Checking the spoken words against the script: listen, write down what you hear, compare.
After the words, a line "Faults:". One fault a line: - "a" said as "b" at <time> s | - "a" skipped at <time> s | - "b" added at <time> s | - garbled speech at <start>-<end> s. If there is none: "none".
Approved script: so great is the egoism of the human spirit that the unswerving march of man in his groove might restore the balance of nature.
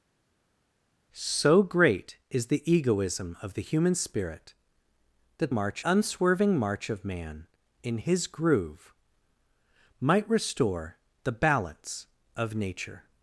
so great is the egoism of the human spirit that march unswerving march of man in his groove might restore the balance of nature.
Faults:
- "the" said as "march" at 5.5 s